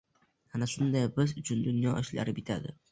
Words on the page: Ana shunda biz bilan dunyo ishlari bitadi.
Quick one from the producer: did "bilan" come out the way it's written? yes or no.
no